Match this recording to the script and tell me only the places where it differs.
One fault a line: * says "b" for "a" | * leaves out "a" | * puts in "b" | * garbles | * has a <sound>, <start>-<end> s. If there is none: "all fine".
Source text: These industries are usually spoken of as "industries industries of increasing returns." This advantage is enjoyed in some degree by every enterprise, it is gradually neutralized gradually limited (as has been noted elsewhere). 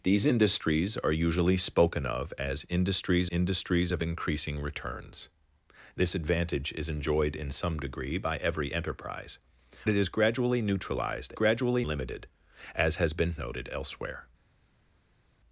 all fine